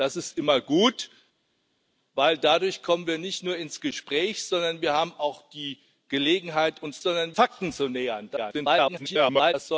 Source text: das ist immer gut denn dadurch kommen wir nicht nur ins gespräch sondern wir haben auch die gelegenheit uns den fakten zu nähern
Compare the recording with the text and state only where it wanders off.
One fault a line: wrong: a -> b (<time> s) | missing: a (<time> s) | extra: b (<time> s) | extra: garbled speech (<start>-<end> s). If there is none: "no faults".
wrong: den -> sondern (7.0 s)
extra: garbled speech (8.4-9.5 s)